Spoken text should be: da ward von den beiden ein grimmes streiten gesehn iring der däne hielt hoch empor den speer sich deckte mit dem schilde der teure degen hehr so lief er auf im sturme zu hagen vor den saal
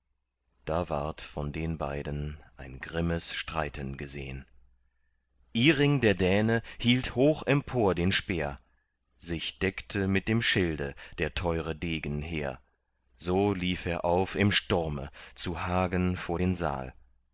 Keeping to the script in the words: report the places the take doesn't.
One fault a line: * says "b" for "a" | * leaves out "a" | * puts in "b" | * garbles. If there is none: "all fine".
all fine